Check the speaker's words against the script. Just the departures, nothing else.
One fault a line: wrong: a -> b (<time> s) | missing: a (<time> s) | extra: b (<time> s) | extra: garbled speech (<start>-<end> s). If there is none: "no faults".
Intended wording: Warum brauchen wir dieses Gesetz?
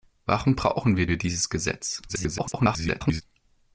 extra: wir (1.1 s)
extra: garbled speech (2.1-3.2 s)